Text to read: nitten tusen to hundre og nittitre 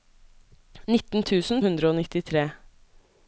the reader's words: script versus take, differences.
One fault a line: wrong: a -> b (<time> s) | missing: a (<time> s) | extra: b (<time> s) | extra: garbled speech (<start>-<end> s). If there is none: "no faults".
missing: to (1.6 s)